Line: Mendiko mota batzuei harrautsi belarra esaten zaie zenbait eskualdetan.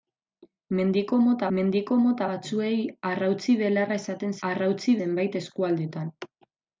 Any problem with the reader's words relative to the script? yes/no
yes